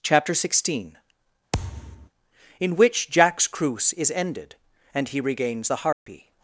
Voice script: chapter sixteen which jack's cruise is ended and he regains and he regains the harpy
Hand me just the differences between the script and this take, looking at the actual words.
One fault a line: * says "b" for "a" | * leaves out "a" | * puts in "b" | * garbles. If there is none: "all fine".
* puts in "in"
* leaves out "and he regains"